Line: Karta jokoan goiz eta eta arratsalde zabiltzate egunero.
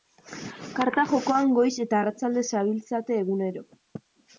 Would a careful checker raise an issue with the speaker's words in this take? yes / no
yes